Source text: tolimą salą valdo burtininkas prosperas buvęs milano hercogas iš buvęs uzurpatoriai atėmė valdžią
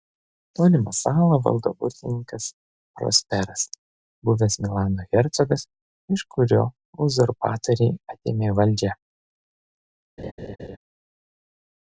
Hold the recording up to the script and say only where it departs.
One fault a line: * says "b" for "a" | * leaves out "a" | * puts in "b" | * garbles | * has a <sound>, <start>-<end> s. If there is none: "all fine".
* says "kurio" for "buvęs"
* has a laugh, 10.2-10.8 s